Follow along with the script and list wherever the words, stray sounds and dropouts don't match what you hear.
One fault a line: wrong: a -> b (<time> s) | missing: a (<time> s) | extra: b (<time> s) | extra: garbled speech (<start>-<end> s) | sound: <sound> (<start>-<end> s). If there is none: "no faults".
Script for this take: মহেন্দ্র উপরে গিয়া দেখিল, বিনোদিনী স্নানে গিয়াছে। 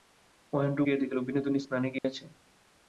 missing: উপরে (0.8 s)
sound: dropout (2.0-2.0 s)